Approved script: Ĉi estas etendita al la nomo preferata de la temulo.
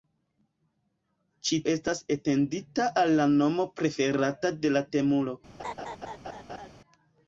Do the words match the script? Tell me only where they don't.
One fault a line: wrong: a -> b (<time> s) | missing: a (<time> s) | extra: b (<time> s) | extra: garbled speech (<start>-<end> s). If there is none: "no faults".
no faults